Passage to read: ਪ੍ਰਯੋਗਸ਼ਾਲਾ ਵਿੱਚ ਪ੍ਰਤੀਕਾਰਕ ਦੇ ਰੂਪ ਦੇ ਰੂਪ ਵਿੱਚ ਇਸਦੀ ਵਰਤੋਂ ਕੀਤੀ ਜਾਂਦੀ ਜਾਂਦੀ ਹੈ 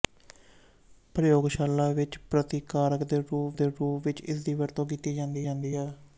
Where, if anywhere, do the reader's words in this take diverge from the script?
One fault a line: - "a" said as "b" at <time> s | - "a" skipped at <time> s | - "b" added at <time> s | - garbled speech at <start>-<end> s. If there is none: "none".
none